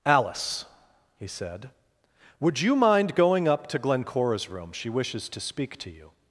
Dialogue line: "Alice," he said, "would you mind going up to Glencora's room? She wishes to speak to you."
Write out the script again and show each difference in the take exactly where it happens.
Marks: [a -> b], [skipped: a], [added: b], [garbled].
"Alice," he said, "would you mind going up to Glencora's room? She wishes to speak to you."